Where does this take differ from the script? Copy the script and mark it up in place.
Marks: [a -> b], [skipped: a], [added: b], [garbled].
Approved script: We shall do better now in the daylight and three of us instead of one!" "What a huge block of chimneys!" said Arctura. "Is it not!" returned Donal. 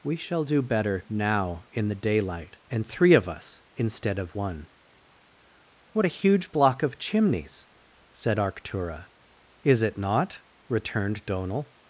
We shall do better now in the daylight and three of us instead of one!" "What a huge block of chimneys!" said Arctura. "Is it not!" returned Donal.